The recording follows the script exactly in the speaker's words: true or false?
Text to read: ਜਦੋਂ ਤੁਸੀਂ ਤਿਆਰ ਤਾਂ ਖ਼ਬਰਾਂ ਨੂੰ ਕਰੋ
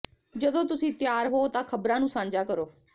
false